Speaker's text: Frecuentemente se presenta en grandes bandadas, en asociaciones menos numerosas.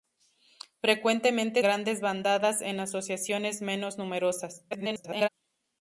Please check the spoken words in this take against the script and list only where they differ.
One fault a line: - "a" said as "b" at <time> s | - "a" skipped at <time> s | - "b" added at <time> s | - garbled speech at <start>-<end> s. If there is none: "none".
- "se presenta en" skipped at 1.6 s
- garbled speech at 4.7-5.3 s